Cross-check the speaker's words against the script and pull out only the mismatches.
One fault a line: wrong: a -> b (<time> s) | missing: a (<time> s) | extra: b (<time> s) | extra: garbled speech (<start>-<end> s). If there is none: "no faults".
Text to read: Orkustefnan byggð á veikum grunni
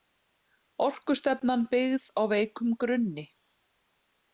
no faults